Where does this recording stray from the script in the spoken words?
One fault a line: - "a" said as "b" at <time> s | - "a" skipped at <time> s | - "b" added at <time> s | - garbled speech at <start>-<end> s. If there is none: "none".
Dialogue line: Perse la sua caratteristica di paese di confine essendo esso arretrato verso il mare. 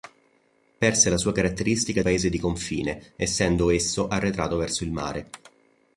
- "di" skipped at 2.0 s